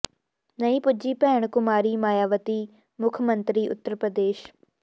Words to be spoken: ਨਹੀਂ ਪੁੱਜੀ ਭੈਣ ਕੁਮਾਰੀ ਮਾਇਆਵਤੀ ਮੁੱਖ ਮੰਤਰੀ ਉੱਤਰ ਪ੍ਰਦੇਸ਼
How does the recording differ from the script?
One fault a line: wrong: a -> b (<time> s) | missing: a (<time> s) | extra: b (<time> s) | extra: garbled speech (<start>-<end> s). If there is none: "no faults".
no faults